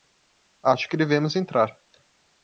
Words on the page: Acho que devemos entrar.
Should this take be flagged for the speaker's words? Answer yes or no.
no